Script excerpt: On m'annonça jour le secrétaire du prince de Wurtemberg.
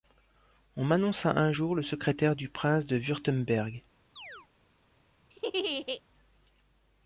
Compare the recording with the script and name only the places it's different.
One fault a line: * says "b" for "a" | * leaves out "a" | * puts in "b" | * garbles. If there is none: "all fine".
* puts in "un"